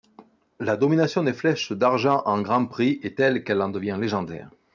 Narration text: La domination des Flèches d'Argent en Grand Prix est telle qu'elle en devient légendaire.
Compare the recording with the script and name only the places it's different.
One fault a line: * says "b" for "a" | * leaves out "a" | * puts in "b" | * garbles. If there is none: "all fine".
all fine